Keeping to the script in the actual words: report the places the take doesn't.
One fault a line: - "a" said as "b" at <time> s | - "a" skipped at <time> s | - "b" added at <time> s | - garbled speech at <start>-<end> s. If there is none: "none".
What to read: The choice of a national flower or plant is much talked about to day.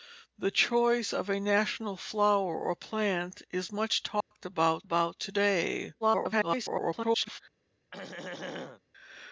- "about" added at 4.8 s
- garbled speech at 6.0-7.4 s